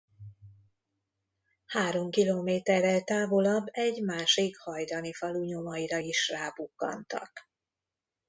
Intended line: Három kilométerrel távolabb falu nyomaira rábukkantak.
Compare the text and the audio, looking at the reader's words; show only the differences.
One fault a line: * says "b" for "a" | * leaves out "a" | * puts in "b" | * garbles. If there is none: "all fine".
* puts in "egy másik hajdani"
* puts in "is"